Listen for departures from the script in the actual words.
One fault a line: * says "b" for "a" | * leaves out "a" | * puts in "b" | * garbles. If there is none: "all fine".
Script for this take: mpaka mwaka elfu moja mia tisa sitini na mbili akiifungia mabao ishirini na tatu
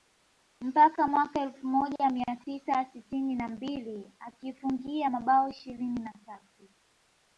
all fine